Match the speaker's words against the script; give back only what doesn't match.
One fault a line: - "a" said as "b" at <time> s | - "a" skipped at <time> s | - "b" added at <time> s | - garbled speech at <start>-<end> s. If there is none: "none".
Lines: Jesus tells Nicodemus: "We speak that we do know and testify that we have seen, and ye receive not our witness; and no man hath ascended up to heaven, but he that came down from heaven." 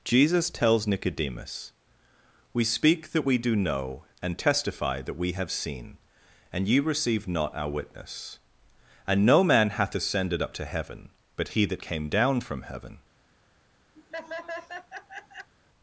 none